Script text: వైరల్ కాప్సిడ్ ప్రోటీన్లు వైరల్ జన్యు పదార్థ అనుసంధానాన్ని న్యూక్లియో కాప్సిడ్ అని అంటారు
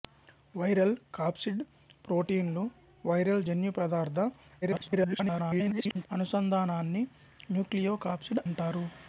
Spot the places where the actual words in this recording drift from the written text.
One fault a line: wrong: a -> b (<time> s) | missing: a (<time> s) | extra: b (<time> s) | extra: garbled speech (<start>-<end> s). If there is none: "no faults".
extra: garbled speech (4.6-6.1 s)
missing: అని (8.4 s)